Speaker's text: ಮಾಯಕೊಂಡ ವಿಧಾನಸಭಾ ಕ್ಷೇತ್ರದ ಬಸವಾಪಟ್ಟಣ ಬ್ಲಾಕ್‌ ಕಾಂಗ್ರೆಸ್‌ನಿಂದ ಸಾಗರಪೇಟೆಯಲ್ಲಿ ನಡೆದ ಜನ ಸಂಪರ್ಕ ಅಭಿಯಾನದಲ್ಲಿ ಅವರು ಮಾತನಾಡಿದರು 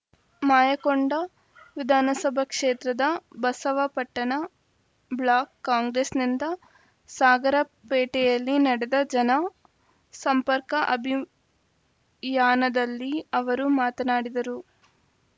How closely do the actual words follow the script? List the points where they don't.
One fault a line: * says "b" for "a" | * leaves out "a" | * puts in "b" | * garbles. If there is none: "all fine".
all fine